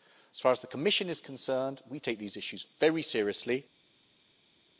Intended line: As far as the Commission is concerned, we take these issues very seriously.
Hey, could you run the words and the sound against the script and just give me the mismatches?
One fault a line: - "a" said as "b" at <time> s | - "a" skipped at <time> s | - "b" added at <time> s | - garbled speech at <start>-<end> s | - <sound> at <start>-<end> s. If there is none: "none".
none